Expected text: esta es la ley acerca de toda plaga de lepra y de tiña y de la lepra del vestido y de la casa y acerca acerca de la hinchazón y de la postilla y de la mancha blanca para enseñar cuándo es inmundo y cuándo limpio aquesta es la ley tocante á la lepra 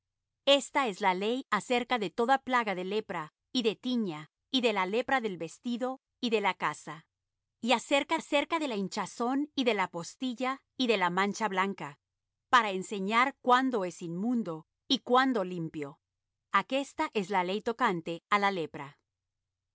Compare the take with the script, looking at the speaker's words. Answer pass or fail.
pass